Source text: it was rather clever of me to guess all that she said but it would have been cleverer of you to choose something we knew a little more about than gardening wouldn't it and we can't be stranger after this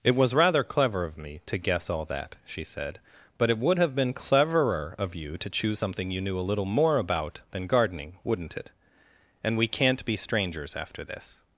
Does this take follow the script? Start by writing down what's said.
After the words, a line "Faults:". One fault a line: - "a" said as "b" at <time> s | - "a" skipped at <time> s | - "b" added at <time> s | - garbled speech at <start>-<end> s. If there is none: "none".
it was rather clever of me to guess all that she said but it would have been cleverer of you to choose something you knew a little more about than gardening wouldn't it and we can't be strangers after this
Faults:
- "we" said as "you" at 6.1 s
- "stranger" said as "strangers" at 10.2 s